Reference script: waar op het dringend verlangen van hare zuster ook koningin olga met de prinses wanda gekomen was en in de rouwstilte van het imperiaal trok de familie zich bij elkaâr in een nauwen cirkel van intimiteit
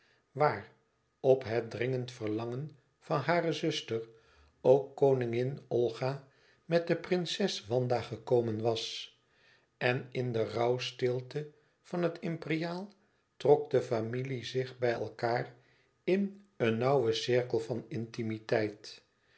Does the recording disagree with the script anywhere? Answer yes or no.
no